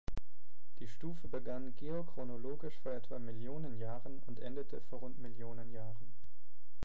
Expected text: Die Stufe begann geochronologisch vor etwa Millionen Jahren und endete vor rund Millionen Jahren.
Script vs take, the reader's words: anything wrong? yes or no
no